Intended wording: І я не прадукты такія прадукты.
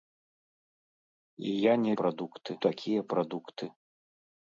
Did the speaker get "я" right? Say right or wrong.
right